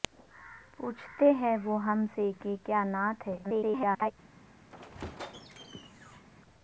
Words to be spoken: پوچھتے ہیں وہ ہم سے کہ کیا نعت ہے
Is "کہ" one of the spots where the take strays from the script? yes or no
no